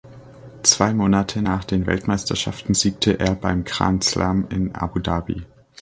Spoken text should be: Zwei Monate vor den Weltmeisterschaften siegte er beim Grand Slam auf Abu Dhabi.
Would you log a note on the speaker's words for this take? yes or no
yes